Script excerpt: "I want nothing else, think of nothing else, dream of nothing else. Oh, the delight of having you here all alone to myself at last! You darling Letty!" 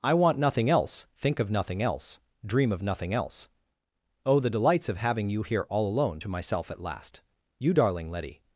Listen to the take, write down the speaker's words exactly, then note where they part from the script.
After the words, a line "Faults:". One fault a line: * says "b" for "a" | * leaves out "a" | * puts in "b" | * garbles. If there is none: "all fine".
"I want nothing else, think of nothing else, dream of nothing else. Oh, the delights of having you here all alone to myself at last! You darling Letty!"
Faults:
* says "delights" for "delight"